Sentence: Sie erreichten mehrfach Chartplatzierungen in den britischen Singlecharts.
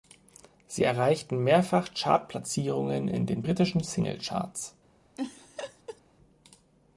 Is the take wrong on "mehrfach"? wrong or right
right